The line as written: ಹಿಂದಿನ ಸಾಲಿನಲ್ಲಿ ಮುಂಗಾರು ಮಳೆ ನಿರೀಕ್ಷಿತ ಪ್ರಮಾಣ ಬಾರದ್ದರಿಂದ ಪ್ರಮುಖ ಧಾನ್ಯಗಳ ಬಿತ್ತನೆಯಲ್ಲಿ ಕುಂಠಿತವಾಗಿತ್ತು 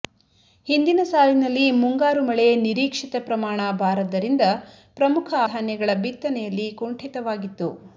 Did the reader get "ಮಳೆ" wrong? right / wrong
right